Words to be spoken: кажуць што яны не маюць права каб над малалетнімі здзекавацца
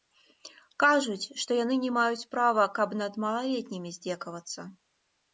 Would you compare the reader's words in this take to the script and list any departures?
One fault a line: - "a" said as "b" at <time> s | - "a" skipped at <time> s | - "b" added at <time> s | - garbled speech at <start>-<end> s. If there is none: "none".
none